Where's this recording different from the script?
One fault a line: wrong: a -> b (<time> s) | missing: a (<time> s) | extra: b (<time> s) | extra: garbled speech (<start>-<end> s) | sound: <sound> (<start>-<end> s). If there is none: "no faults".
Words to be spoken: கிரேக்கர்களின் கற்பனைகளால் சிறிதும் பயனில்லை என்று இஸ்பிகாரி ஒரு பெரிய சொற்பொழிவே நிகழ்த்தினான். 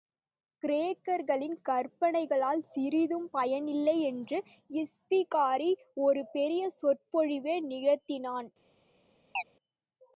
sound: chirp (9.3-9.4 s)